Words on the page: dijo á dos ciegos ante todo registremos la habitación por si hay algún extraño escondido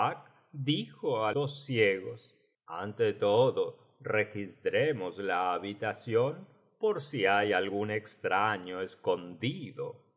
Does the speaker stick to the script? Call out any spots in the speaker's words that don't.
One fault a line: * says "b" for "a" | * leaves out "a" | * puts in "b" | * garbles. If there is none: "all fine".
all fine